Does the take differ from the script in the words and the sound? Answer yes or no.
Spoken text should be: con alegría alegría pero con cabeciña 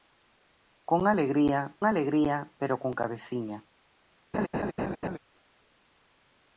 yes